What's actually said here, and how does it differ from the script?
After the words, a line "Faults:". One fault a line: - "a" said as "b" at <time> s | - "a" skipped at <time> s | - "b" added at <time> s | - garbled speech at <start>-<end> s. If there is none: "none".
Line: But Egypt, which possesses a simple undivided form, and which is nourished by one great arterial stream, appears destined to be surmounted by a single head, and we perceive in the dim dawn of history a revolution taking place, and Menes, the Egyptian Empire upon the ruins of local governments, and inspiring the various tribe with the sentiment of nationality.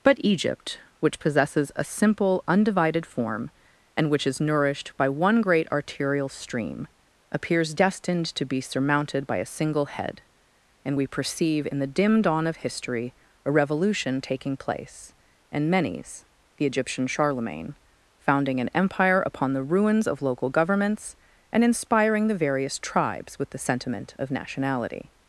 But Egypt, which possesses a simple undivided form, and which is nourished by one great arterial stream, appears destined to be surmounted by a single head, and we perceive in the dim dawn of history a revolution taking place, and Menes, the Egyptian Charlemagne, founding an empire upon the ruins of local governments, and inspiring the various tribes with the sentiment of nationality.
Faults:
- "Charlemagne founding an" added at 17.1 s
- "tribe" said as "tribes" at 22.8 s